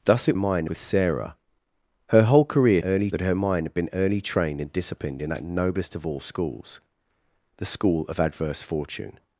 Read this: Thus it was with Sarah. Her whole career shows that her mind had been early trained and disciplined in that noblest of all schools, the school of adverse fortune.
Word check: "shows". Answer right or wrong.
wrong